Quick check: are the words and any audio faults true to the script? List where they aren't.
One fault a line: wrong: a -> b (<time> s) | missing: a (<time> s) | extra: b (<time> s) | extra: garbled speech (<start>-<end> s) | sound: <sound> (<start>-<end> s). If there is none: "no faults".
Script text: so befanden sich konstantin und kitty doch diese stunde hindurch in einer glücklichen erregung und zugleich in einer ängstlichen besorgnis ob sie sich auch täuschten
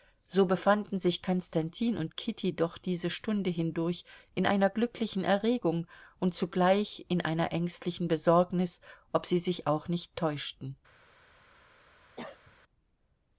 extra: nicht (9.9 s)
sound: cough (12.2-12.6 s)